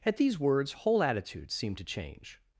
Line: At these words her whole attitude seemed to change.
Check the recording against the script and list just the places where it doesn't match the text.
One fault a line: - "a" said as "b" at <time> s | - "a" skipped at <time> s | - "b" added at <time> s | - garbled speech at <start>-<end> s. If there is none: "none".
- "her" skipped at 0.7 s